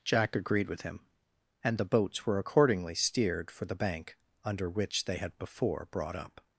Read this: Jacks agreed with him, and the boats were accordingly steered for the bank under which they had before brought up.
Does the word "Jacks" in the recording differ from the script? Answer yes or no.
yes